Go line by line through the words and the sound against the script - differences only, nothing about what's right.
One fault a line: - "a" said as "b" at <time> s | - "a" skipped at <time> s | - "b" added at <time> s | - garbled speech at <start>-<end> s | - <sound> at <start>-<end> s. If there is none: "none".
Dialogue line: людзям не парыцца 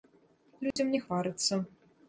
- dropout at 0.7-0.8 s